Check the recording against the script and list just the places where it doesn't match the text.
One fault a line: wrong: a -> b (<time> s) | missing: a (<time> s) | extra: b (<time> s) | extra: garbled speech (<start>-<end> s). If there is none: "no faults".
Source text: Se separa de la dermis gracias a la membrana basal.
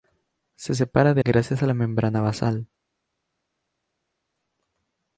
missing: la dermis (1.2 s)